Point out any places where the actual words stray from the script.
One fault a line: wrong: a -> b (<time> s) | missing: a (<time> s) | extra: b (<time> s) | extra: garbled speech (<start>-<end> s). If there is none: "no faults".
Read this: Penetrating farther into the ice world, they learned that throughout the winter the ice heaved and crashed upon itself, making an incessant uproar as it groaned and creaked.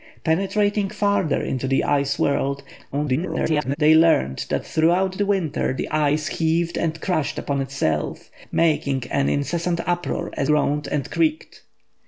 extra: garbled speech (2.9-3.8 s)
missing: it (10.5 s)